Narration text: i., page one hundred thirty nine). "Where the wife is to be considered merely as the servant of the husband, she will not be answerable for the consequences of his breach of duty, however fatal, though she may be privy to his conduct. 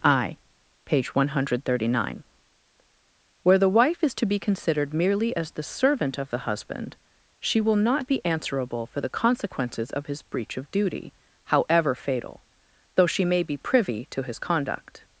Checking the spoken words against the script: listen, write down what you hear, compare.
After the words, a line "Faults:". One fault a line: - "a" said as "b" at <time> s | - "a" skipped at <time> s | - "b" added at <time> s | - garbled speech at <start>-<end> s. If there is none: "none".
i., page one hundred thirty nine). "Where the wife is to be considered merely as the servant of the husband, she will not be answerable for the consequences of his breach of duty, however fatal, though she may be privy to his conduct.
Faults:
none